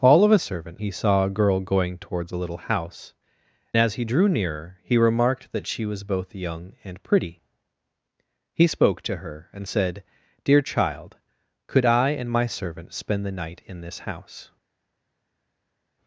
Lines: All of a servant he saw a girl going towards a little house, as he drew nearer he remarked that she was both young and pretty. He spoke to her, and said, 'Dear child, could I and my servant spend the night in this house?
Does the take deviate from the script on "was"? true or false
false